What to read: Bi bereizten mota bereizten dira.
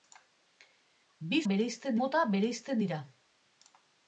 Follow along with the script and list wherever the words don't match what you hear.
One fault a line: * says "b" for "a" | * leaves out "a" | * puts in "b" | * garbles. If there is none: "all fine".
all fine